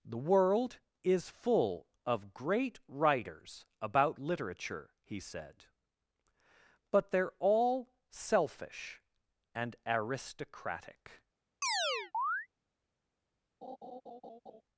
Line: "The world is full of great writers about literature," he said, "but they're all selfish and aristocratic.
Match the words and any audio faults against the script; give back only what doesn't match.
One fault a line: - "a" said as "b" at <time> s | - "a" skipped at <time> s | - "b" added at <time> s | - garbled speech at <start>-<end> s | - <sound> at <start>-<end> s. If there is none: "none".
- chirp at 11.6-12.5 s
- laugh at 13.6-14.6 s